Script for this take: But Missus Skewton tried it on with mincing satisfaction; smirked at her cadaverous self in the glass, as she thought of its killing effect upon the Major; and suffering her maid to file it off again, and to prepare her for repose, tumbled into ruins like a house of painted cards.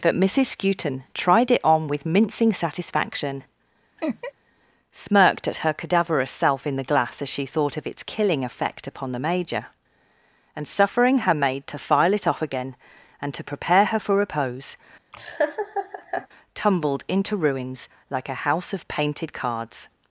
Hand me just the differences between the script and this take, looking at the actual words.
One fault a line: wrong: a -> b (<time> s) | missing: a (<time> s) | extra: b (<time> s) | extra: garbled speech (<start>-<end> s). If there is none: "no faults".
no faults